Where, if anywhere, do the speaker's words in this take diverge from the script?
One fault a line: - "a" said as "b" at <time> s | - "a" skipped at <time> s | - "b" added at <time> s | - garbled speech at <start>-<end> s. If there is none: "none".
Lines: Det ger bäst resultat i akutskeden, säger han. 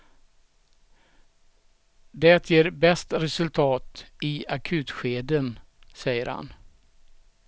none